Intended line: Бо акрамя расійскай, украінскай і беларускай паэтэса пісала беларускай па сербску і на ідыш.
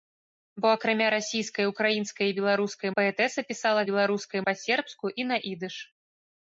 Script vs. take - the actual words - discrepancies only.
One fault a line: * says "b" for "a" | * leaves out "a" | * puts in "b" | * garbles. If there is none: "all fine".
all fine